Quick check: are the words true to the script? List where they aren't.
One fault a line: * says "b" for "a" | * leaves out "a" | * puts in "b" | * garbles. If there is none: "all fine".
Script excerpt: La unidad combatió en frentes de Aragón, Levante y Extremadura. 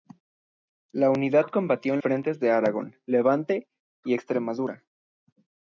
all fine